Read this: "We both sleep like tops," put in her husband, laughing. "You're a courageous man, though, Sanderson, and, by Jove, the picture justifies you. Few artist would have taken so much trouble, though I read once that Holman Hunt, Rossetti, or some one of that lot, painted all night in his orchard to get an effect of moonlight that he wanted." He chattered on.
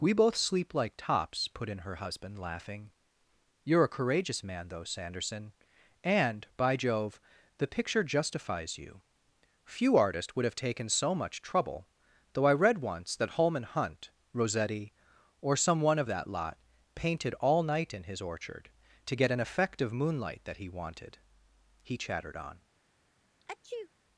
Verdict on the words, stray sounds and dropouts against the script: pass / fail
fail